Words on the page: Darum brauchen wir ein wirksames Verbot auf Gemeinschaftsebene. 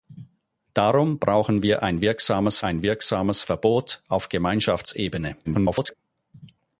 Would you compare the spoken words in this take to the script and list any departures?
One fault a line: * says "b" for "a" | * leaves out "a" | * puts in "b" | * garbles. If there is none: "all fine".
* puts in "ein wirksames"
* garbles